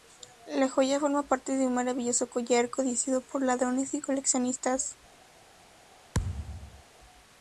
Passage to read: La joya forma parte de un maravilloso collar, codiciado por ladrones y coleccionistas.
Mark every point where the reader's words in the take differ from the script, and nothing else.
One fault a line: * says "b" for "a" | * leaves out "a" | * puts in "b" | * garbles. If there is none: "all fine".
all fine